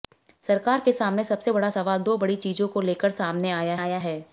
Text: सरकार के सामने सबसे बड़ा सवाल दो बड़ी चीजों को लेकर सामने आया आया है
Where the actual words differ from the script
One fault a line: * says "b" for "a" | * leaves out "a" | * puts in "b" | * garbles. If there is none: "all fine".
all fine